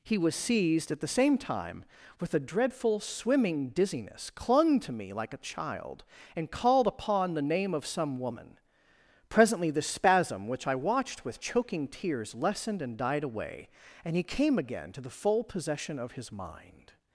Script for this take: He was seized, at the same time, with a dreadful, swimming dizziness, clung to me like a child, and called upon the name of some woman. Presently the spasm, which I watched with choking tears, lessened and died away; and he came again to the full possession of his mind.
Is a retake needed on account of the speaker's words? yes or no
no